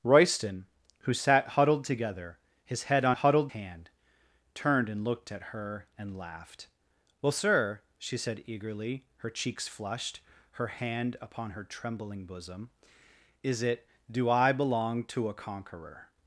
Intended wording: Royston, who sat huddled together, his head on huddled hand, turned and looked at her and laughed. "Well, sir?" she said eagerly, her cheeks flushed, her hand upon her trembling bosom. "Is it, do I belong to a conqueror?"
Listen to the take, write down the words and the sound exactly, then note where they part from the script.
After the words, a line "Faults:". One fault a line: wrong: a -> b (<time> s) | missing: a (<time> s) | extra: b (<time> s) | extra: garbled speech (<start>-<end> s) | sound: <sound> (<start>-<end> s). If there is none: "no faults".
Royston, who sat huddled together, his head on huddled hand, turned and looked at her and laughed. "Well, sir?" she said eagerly, her cheeks flushed, her hand upon her trembling bosom. "Is it, do I belong to a conqueror?"
Faults:
no faults